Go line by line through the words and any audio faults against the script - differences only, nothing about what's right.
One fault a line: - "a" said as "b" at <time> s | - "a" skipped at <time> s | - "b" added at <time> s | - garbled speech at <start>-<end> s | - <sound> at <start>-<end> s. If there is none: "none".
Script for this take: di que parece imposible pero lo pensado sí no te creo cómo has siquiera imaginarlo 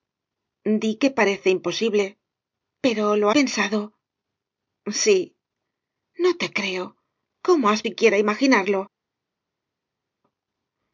none